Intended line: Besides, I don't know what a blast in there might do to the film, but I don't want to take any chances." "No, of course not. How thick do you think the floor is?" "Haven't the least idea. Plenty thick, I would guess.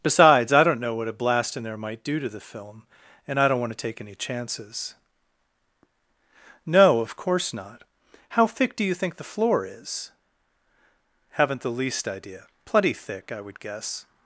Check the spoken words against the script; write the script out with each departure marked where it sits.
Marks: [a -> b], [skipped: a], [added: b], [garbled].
Besides, I don't know what a blast in there might do to the film, [but -> and] I don't want to take any chances." "No, of course not. How thick do you think the floor is?" "Haven't the least idea. Plenty thick, I would guess.